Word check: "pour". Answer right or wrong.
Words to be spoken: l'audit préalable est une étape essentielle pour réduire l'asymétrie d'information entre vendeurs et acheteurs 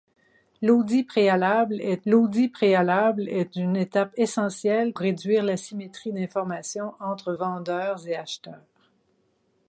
wrong